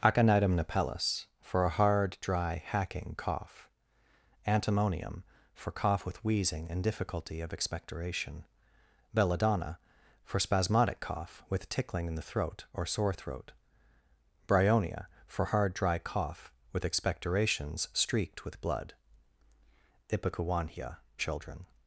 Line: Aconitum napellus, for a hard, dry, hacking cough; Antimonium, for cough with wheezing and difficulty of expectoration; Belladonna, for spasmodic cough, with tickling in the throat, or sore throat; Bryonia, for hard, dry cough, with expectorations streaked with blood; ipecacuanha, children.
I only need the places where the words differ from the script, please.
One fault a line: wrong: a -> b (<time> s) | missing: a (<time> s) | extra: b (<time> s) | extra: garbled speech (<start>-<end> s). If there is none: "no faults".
no faults